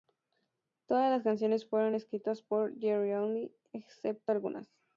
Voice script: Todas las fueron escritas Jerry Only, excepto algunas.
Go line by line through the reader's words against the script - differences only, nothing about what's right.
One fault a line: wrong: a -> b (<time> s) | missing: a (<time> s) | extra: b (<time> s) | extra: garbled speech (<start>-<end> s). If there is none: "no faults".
extra: canciones (1.2 s)
extra: por (2.4 s)